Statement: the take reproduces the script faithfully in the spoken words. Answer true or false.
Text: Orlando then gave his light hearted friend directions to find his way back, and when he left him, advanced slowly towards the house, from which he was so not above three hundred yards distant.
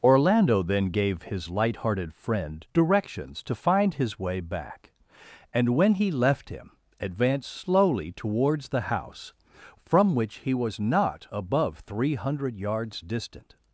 false